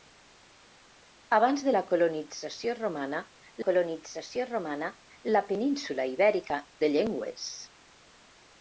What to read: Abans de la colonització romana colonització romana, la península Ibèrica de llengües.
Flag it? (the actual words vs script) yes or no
no